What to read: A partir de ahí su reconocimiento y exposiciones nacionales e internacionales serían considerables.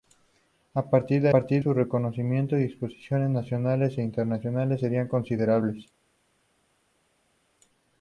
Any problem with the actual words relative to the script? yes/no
yes